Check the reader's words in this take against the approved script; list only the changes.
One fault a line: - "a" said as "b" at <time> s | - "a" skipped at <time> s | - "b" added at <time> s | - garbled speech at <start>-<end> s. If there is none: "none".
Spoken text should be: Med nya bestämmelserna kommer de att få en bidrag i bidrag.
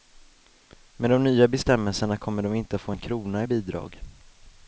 - "de" added at 1.1 s
- "inte" added at 2.5 s
- "bidrag" said as "krona" at 3.0 s